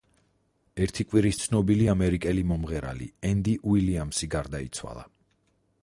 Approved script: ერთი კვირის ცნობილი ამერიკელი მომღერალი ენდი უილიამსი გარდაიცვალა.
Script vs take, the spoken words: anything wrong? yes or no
no